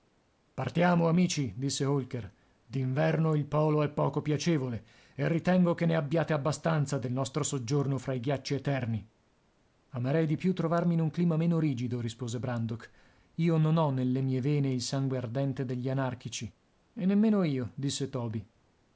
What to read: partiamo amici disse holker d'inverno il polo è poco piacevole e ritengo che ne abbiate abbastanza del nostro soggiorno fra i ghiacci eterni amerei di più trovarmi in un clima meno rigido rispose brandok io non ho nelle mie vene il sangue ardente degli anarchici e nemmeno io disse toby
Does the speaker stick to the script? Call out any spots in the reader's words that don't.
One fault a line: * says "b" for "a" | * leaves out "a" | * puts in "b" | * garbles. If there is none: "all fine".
all fine